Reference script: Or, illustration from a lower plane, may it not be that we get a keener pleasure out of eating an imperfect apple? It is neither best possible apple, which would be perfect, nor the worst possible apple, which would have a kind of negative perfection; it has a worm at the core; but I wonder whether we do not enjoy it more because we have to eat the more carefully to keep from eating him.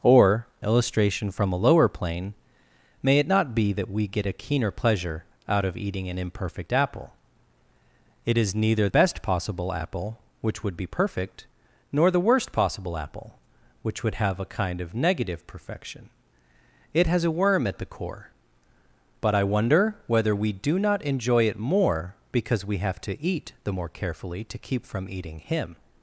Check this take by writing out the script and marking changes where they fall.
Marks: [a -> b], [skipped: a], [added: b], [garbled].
Or, illustration from a lower plane, may it not be that we get a keener pleasure out of eating an imperfect apple? It is neither best possible apple, which would be perfect, nor the worst possible apple, which would have a kind of negative perfection; it has a worm at the core; but I wonder whether we do not enjoy it more because we have to eat the more carefully to keep from eating him.